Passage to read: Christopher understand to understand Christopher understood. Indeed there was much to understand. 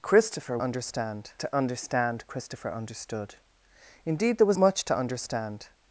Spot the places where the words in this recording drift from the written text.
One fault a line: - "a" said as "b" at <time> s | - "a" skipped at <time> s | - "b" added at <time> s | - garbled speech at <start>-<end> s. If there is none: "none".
none